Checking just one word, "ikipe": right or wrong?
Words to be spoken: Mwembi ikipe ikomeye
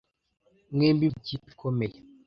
right